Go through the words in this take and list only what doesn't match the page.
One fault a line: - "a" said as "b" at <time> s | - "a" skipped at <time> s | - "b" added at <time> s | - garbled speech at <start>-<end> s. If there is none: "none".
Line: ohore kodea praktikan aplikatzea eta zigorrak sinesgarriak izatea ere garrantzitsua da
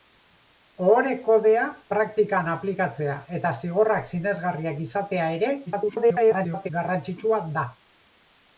- garbled speech at 5.7-6.7 s